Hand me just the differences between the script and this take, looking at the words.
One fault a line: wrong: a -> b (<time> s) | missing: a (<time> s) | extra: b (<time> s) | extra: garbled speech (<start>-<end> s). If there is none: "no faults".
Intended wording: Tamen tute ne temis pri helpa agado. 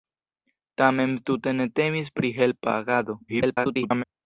extra: garbled speech (3.3-4.0 s)